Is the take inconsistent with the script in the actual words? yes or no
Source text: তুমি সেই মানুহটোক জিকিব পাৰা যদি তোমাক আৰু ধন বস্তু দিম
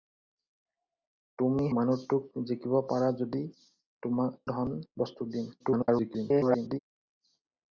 yes